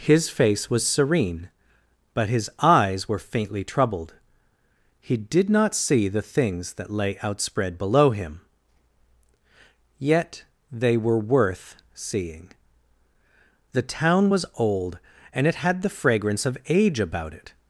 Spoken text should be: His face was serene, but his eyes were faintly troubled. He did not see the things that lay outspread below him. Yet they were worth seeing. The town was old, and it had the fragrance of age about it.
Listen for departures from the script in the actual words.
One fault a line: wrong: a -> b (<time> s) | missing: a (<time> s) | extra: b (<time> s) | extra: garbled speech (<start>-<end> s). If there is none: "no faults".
no faults